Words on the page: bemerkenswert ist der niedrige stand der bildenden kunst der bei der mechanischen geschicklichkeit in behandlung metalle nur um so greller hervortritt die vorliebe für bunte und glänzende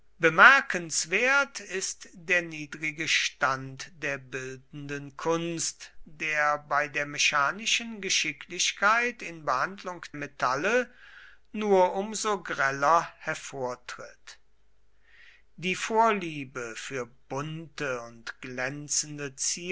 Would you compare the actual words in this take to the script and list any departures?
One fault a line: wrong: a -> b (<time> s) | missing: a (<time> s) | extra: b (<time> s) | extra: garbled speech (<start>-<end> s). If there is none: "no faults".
no faults